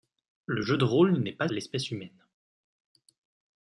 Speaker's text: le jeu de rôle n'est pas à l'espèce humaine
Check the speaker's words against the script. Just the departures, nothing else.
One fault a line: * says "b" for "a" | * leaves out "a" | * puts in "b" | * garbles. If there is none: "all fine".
all fine